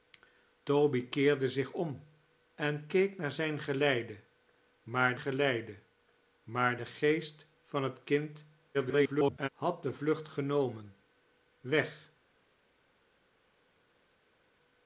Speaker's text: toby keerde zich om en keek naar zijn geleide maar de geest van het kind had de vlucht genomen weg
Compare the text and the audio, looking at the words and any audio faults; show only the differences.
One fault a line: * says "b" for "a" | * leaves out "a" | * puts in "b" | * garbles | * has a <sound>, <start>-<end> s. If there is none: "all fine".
* puts in "geleide maar"
* garbles